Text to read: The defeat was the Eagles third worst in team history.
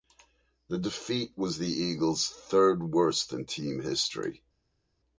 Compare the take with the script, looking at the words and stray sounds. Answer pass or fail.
pass